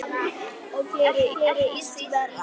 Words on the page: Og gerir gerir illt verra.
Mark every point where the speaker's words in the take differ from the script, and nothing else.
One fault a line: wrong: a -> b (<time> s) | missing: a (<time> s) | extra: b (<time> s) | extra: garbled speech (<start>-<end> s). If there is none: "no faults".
no faults